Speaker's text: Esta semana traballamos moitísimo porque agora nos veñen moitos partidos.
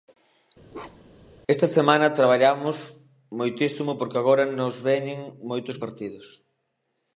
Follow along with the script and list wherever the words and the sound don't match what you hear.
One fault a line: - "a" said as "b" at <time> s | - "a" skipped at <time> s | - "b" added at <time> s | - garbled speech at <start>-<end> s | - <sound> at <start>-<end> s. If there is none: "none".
- bark at 0.7-1.3 s